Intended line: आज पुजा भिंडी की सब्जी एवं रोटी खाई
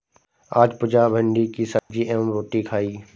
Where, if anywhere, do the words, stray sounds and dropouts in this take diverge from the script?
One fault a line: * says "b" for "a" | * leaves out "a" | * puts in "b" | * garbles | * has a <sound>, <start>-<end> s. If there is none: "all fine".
* has a dropout, 1.8-1.9 s